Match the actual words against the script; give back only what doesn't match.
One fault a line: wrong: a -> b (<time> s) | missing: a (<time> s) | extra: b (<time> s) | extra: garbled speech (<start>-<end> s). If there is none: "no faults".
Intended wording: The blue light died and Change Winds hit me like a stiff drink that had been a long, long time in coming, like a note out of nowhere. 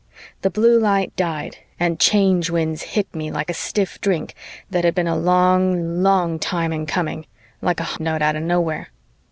no faults